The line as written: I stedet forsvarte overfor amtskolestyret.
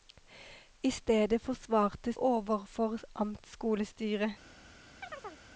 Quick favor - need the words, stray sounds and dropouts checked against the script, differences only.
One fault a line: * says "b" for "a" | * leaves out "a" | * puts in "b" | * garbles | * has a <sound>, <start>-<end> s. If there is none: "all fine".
* has a chirp, 5.0-5.4 s